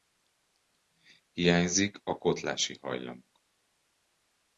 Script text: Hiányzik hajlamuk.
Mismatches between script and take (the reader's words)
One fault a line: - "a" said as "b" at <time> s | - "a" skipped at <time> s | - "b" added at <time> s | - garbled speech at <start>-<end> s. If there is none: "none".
- "a kotlási" added at 2.0 s